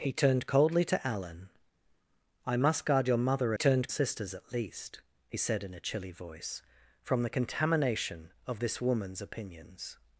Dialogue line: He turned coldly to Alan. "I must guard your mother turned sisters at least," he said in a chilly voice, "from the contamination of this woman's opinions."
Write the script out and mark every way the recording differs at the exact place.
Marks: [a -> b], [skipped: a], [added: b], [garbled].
He turned coldly to Alan. "I must guard your mother turned sisters at least," he said in a chilly voice, "from the contamination of this woman's opinions."